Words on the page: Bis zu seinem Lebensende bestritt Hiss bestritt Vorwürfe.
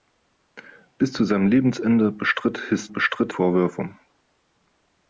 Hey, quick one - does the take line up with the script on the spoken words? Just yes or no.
yes